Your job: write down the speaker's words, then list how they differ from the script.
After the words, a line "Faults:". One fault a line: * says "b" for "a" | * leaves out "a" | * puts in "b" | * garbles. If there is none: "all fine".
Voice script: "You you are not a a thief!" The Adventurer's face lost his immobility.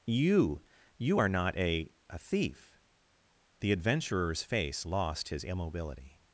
"You you are not a a thief!" The Adventurer's face lost his immobility.
Faults:
all fine